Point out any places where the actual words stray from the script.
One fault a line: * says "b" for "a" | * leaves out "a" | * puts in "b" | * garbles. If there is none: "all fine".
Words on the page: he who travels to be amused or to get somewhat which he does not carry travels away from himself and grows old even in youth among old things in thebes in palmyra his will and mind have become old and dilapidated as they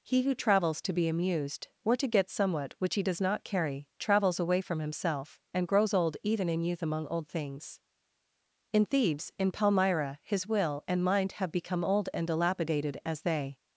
all fine